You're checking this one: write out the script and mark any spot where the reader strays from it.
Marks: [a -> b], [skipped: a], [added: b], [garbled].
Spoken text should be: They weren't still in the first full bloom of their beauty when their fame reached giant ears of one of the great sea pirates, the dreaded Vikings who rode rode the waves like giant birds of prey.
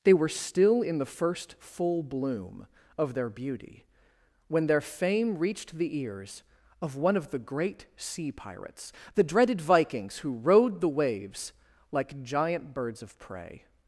They [weren't -> were] still in the first full bloom of their beauty when their fame reached [giant -> the] ears of one of the great sea pirates, the dreaded Vikings who rode [skipped: rode] the waves like giant birds of prey.